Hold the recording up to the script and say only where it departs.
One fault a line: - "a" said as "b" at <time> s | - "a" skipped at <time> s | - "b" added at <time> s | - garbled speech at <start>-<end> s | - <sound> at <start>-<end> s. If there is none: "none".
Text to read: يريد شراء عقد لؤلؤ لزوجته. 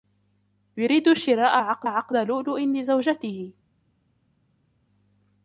- "عقد" added at 1.8 s